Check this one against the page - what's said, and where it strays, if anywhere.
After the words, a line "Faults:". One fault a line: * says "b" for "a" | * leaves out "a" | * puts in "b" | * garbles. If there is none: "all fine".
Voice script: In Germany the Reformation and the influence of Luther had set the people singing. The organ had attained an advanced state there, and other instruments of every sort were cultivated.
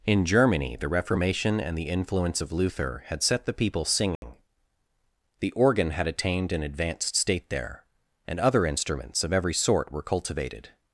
In Germany the Reformation and the influence of Luther had set the people singing. The organ had attained an advanced state there, and other instruments of every sort were cultivated.
Faults:
all fine